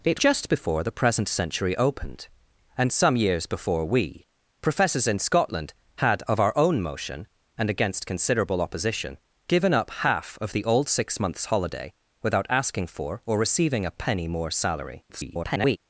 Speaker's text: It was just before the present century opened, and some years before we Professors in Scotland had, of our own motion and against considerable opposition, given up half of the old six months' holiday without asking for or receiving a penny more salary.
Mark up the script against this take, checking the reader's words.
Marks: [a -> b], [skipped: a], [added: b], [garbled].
It [skipped: was] just before the present century opened, and some years before we Professors in Scotland had, of our own motion and against considerable opposition, given up half of the old six months' holiday without asking for or receiving a penny more salary. [garbled]